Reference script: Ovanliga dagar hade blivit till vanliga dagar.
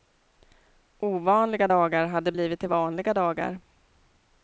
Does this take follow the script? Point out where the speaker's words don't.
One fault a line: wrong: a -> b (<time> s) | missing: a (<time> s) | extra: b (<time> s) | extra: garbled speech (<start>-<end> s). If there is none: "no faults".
no faults